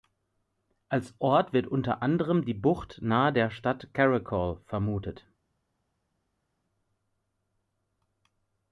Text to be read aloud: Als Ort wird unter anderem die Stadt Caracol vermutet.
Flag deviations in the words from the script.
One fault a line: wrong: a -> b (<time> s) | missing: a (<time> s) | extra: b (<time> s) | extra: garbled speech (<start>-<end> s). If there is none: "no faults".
extra: Bucht nahe der (2.5 s)